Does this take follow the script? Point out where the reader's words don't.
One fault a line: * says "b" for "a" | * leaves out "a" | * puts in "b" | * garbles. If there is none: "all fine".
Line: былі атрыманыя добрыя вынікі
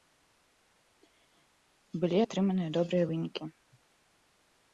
all fine